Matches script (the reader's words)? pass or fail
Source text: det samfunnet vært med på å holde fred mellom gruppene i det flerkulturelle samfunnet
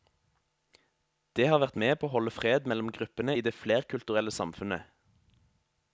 fail